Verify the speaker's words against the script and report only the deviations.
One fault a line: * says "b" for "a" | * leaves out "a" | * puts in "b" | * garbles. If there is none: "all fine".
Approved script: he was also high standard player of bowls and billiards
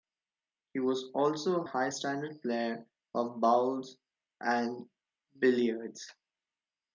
all fine